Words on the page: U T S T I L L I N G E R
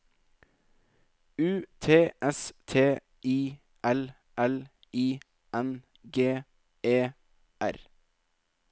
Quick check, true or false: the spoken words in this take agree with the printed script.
true